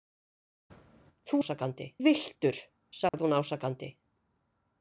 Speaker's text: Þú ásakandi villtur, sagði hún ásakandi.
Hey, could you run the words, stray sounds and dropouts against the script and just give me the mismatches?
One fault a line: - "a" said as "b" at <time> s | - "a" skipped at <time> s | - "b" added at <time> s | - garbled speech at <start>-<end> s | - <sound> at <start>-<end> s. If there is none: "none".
- dropout at 3.1-3.1 s